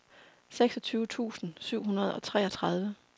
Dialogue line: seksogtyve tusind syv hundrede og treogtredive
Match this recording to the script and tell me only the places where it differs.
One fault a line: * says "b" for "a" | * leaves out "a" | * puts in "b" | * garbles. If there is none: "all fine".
all fine